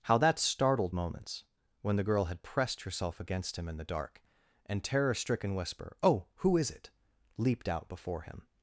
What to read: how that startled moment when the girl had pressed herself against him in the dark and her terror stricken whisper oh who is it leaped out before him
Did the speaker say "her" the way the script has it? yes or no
no